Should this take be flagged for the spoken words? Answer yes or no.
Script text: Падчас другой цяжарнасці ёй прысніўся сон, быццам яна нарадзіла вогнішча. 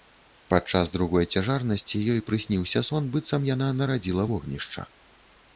no